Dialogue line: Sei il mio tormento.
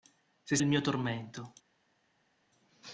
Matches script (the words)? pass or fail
pass